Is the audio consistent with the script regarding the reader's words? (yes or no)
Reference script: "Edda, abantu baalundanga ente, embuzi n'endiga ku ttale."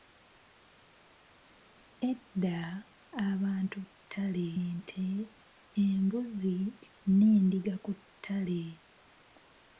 no